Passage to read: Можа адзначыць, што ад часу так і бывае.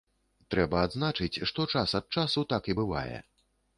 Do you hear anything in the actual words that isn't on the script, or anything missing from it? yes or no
yes